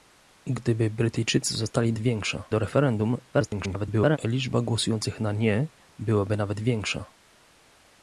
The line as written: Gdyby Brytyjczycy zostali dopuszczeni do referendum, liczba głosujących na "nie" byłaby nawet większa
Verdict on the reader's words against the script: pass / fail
fail